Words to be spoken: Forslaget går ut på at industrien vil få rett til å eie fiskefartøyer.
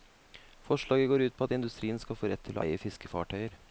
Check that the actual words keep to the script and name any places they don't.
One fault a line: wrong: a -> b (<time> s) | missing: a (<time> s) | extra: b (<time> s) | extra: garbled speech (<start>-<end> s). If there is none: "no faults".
wrong: vil -> skal (2.0 s)